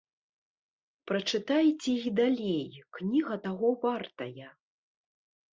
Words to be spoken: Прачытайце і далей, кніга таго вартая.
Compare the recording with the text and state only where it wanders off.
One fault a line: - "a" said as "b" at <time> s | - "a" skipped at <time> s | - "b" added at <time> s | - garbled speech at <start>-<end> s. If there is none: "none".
none